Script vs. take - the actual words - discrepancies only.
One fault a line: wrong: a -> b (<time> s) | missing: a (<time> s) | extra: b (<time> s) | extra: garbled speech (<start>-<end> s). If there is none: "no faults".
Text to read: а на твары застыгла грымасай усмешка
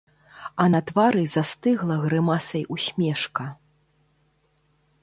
no faults